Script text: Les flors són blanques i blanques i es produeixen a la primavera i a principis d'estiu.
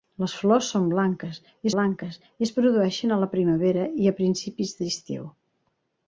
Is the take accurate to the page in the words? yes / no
yes